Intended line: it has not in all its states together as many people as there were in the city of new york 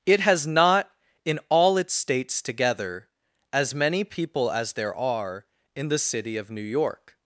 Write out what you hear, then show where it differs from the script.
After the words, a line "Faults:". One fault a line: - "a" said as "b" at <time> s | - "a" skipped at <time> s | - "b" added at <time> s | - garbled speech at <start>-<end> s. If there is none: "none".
it has not in all its states together as many people as there are in the city of new york
Faults:
- "were" said as "are" at 5.0 s